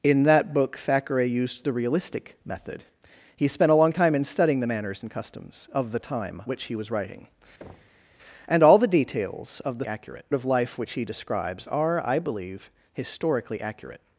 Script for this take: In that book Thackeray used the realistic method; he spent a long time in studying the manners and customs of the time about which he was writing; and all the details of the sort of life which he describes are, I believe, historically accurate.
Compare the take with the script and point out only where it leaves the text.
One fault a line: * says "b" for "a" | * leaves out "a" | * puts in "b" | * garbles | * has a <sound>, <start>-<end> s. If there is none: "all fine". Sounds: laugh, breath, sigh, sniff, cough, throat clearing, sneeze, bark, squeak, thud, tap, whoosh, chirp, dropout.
* leaves out "about"
* has a thud, 7.6-8.1 s
* says "accurate" for "sort"